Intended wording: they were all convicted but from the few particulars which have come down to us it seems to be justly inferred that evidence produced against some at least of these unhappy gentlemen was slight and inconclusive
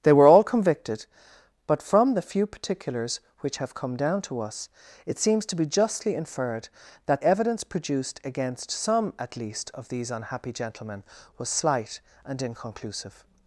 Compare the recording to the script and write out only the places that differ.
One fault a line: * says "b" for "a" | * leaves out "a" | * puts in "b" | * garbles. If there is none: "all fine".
all fine